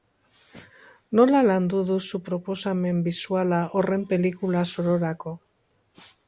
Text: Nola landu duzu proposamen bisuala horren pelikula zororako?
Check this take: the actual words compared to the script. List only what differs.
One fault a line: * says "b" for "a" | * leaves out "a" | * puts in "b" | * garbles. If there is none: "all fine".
all fine